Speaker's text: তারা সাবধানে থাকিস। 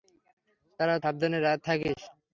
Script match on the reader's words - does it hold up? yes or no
yes